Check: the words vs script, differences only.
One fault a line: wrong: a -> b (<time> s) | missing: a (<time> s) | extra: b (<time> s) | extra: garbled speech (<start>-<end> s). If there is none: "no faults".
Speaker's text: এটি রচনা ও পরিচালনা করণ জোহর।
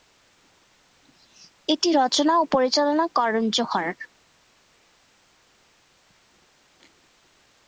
no faults